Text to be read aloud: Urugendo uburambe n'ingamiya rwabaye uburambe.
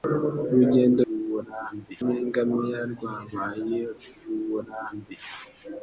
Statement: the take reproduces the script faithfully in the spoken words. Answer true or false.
true